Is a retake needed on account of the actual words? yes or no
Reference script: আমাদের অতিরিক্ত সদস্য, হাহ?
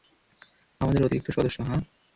no